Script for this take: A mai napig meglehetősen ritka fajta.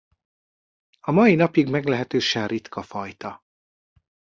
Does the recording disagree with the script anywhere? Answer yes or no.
no